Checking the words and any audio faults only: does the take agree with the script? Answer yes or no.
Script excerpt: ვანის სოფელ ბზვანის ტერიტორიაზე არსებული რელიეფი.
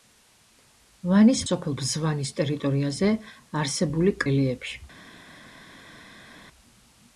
yes